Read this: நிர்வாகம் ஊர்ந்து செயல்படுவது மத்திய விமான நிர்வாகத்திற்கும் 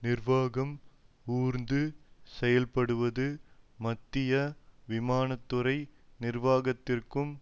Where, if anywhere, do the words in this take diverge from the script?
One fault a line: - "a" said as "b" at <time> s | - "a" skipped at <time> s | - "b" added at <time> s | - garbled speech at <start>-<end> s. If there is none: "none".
- "துறை" added at 5.5 s